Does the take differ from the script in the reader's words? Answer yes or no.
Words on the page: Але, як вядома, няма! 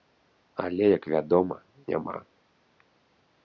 no